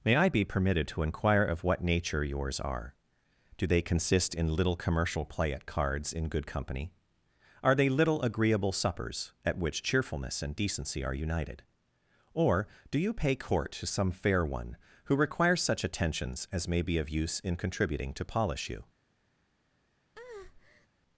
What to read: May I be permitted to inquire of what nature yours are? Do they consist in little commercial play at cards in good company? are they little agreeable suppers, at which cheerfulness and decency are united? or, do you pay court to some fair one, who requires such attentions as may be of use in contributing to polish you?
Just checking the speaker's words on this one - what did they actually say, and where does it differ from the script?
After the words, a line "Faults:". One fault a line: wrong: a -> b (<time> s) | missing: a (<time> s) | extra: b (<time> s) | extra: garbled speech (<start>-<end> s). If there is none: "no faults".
May I be permitted to inquire of what nature yours are? Do they consist in little commercial play at cards in good company? are they little agreeable suppers, at which cheerfulness and decency are united? or, do you pay court to some fair one, who requires such attentions as may be of use in contributing to polish you?
Faults:
no faults